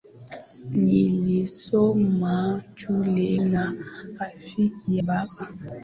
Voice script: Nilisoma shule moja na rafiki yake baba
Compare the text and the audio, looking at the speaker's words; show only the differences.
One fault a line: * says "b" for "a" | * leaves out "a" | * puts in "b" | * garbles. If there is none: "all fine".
* leaves out "moja"
* leaves out "yake"